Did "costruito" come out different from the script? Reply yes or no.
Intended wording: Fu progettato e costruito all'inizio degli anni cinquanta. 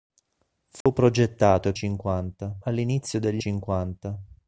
yes